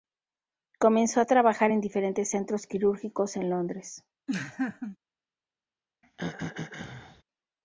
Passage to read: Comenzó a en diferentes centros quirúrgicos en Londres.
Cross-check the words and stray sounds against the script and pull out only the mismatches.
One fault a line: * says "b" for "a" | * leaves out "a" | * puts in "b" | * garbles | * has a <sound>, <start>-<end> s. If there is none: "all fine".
* puts in "trabajar"
* has a laugh, 4.3-5.0 s
* has a throat clearing, 6.0-7.2 s